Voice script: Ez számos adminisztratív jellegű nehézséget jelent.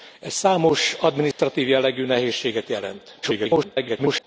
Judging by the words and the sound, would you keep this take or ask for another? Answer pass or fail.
fail